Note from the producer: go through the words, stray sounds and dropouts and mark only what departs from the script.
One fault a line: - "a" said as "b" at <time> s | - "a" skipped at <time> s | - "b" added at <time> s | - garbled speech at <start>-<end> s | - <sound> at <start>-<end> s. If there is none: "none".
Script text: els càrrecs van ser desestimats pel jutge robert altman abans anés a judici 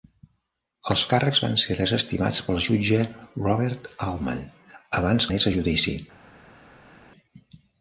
none